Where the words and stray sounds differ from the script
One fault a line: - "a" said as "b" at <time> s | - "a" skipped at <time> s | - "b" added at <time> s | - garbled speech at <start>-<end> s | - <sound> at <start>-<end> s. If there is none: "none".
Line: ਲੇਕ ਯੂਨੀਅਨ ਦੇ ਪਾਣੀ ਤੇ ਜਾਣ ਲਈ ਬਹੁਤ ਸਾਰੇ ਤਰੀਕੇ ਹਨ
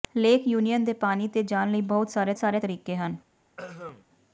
- "ਸਾਰੇ" added at 2.4 s
- throat clearing at 3.6-4.1 s